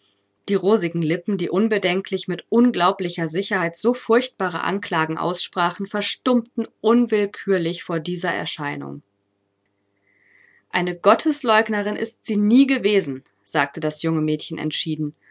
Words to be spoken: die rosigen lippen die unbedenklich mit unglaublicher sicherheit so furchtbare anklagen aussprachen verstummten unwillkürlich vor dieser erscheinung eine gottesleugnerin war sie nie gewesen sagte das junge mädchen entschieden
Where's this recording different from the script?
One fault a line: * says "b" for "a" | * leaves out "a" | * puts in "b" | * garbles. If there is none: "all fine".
* says "ist" for "war"